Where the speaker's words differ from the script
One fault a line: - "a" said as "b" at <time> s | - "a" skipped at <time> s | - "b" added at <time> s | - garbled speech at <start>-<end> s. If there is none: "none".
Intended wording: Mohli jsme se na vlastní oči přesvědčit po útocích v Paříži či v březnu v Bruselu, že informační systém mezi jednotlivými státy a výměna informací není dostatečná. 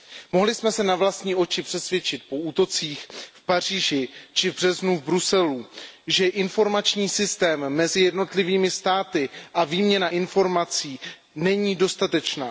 none